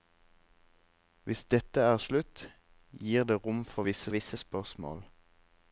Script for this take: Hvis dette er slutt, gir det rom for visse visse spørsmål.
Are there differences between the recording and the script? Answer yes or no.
no